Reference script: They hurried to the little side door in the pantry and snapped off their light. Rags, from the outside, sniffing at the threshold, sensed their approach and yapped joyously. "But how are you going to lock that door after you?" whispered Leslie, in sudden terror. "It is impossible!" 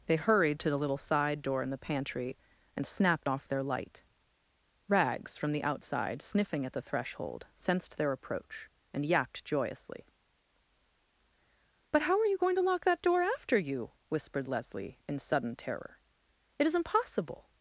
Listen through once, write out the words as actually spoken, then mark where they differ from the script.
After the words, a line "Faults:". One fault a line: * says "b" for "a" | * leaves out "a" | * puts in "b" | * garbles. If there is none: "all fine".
They hurried to the little side door in the pantry and snapped off their light. Rags, from the outside, sniffing at the threshold, sensed their approach and yapped joyously. "But how are you going to lock that door after you?" whispered Leslie, in sudden terror. "It is impossible!"
Faults:
all fine